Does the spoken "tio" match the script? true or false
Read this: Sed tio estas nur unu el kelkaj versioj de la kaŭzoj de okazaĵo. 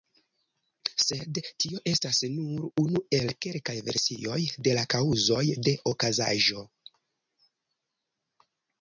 true